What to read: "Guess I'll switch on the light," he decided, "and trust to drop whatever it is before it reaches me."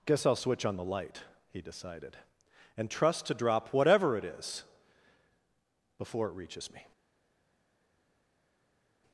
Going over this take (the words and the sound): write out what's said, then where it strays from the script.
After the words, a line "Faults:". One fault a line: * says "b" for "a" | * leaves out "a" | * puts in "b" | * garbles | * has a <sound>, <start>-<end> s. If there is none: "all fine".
"Guess I'll switch on the light," he decided, "and trust to drop whatever it is before it reaches me."
Faults:
all fine